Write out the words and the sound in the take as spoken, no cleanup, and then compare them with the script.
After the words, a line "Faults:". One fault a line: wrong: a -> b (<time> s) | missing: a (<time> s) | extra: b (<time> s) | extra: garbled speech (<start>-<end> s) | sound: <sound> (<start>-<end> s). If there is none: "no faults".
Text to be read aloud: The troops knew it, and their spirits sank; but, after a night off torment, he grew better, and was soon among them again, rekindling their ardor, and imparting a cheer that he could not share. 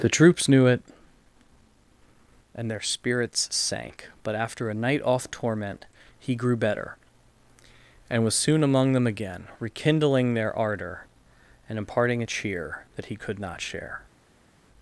The troops knew it, and their spirits sank; but, after a night off torment, he grew better, and was soon among them again, rekindling their ardor, and imparting a cheer that he could not share.
Faults:
no faults